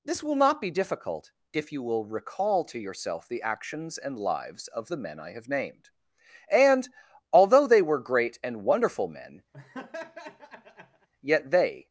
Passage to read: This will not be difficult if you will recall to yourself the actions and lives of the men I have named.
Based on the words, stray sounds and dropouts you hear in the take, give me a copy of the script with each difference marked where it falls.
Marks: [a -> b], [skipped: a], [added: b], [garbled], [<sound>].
This will not be difficult if you will recall to yourself the actions and lives of the men I have named. [added: And although they were great and wonderful men yet they] [laugh]